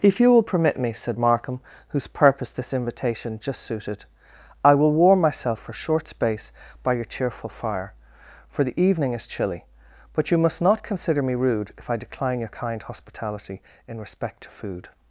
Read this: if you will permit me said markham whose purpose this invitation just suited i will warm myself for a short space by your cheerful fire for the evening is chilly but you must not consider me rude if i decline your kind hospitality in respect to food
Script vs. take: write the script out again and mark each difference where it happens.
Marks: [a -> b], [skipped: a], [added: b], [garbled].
if you will permit me said markham whose purpose this invitation just suited i will warm myself for a short space by your cheerful fire for the evening is chilly but you must not consider me rude if i decline your kind hospitality in respect to food